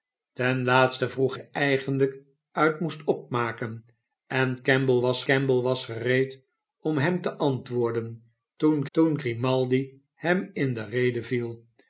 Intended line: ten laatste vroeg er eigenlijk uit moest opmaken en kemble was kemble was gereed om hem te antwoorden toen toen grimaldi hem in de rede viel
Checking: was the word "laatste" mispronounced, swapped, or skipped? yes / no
no